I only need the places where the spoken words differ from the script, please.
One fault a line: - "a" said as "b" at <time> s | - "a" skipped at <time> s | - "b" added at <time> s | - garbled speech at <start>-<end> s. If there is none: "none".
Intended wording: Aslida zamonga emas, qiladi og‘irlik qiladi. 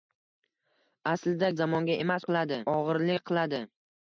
none